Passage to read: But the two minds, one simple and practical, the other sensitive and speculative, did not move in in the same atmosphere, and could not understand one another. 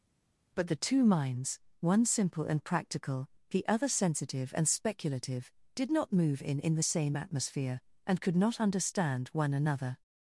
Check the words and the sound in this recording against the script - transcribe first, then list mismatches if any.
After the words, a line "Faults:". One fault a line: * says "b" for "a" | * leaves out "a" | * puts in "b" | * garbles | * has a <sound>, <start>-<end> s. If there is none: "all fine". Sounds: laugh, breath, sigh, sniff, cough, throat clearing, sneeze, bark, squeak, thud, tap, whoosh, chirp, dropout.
But the two minds, one simple and practical, the other sensitive and speculative, did not move in in the same atmosphere, and could not understand one another.
Faults:
all fine